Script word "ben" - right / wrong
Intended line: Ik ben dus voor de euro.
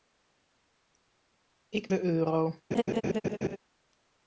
wrong